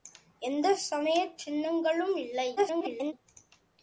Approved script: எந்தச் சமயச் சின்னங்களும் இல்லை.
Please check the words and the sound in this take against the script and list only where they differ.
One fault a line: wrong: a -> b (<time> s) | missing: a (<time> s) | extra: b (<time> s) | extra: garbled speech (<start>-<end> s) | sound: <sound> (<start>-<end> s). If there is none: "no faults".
extra: garbled speech (2.6-3.1 s)